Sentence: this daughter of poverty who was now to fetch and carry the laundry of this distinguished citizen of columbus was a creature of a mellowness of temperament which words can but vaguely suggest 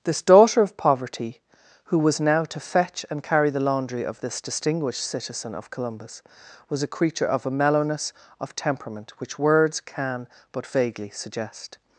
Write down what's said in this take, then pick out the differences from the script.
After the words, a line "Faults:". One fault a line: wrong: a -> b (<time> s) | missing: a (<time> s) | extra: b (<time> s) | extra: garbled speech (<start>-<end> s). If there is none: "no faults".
this daughter of poverty who was now to fetch and carry the laundry of this distinguished citizen of columbus was a creature of a mellowness of temperament which words can but vaguely suggest
Faults:
no faults